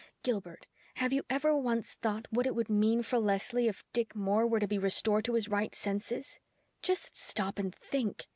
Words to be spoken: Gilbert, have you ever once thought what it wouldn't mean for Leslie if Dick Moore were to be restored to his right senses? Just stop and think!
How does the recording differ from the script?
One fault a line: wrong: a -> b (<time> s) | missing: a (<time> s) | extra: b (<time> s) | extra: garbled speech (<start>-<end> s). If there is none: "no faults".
wrong: wouldn't -> would (2.5 s)